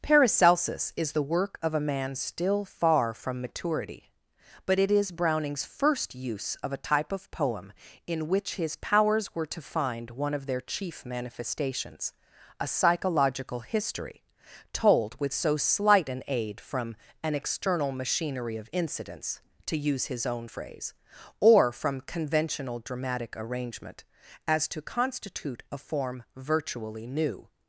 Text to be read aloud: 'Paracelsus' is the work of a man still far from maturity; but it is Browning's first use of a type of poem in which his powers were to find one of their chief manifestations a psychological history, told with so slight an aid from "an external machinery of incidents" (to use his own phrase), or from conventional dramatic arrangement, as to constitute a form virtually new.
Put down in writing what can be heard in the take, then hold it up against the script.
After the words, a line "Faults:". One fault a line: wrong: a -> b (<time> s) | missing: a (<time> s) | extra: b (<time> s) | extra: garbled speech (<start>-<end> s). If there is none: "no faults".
'Paracelsus' is the work of a man still far from maturity; but it is Browning's first use of a type of poem in which his powers were to find one of their chief manifestations a psychological history, told with so slight an aid from "an external machinery of incidents" (to use his own phrase), or from conventional dramatic arrangement, as to constitute a form virtually new.
Faults:
no faults